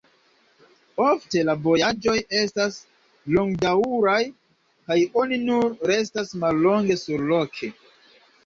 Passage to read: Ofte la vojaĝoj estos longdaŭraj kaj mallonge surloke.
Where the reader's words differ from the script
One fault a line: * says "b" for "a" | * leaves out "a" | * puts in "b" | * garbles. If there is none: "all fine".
* says "estas" for "estos"
* puts in "oni nur restas"